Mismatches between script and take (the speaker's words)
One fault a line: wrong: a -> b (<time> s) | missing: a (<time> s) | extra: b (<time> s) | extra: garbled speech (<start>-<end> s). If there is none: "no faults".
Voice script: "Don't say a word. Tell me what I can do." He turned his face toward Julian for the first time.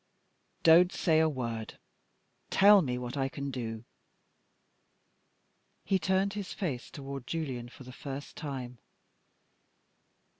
no faults